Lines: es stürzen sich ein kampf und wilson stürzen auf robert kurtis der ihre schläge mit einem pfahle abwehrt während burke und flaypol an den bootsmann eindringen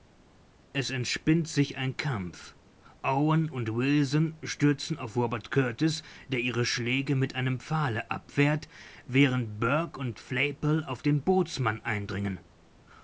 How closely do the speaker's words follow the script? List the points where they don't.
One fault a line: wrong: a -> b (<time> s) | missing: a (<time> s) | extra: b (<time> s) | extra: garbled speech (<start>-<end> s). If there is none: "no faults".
wrong: stürzen -> entspinnt (0.9 s)
extra: owen (3.0 s)
wrong: an -> auf (10.8 s)